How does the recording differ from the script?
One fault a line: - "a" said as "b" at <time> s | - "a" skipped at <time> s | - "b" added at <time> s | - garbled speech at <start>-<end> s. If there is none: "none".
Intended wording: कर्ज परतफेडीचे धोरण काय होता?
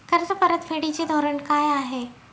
- "होता" said as "आहे" at 1.7 s